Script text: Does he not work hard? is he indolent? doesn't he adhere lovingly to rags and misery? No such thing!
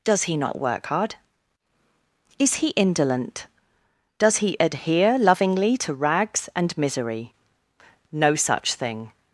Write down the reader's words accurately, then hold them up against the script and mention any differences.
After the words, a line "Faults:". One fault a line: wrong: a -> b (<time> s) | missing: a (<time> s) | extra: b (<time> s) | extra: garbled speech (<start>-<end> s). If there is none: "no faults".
Does he not work hard? is he indolent? does he adhere lovingly to rags and misery? No such thing!
Faults:
wrong: doesn't -> does (4.2 s)